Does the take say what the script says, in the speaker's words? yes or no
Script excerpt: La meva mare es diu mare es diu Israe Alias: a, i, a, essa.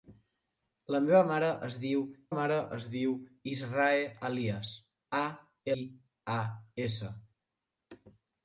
yes